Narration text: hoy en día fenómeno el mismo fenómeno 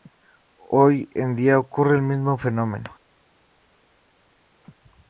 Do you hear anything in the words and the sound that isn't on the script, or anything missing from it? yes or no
yes